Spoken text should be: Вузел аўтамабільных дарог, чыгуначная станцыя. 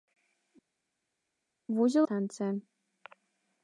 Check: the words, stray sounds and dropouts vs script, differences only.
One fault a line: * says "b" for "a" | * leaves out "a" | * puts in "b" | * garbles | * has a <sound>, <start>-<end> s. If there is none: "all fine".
* leaves out "аўтамабільных дарог чыгуначная"